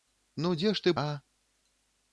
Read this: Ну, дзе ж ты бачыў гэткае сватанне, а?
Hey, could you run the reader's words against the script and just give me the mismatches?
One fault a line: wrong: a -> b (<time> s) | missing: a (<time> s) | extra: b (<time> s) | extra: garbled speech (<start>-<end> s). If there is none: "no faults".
missing: бачыў гэткае сватанне (0.9 s)